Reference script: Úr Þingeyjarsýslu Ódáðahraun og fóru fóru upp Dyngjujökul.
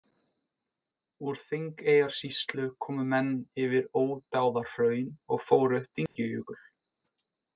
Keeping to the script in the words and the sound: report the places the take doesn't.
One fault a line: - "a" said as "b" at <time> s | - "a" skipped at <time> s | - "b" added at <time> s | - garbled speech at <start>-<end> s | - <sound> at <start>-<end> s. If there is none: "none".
- "komu menn yfir" added at 2.9 s
- "fóru" skipped at 5.8 s
- dropout at 6.1-6.2 s